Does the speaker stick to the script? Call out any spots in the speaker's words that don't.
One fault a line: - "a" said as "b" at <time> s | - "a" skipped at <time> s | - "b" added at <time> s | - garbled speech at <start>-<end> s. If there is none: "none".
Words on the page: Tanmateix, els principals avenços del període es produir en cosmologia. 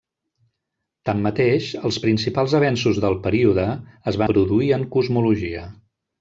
none